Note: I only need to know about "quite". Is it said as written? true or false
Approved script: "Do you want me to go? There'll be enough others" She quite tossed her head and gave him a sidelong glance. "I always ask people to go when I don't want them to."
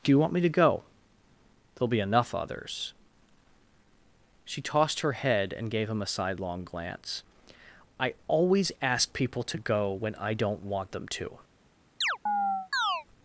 false